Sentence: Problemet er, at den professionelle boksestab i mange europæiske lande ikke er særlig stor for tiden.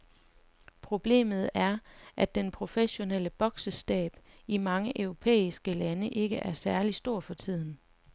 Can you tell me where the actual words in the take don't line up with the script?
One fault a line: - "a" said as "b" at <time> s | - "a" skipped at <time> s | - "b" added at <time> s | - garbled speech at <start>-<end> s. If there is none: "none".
none